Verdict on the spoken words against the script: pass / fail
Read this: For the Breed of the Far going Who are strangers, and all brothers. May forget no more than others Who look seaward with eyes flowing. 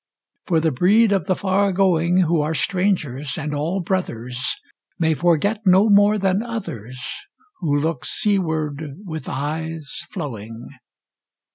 pass